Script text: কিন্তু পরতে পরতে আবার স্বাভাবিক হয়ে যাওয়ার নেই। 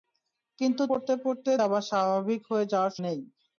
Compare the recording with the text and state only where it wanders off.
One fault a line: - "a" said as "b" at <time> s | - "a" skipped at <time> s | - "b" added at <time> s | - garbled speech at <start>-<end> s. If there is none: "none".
none